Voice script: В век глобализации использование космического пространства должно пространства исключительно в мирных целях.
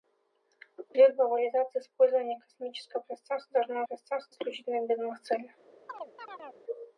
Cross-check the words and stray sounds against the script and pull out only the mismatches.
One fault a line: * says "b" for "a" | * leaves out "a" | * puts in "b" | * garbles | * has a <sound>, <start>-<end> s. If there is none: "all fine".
* has a chirp, 5.9-6.6 s